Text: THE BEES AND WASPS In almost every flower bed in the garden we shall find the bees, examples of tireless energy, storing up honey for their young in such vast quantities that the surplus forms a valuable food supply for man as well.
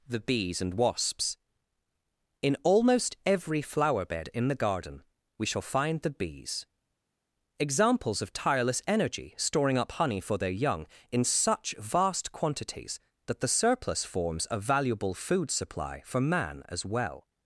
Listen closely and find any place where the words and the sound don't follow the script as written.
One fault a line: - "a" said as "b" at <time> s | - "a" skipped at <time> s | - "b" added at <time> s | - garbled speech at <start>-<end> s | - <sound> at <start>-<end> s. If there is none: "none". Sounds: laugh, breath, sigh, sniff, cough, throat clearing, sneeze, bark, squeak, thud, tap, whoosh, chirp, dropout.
none